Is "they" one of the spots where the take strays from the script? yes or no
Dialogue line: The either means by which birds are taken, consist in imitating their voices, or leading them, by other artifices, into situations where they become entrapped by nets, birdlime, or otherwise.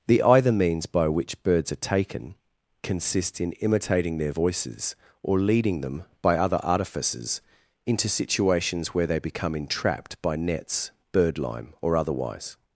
no